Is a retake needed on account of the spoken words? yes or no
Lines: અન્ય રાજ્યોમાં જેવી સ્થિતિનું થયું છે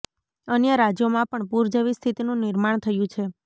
yes